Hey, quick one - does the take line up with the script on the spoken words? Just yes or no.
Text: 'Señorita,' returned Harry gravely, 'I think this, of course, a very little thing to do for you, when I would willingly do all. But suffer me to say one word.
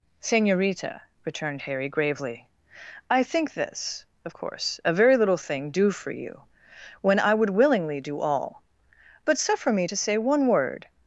no